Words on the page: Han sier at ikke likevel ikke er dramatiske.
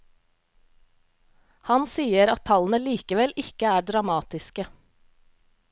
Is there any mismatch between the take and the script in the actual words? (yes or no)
yes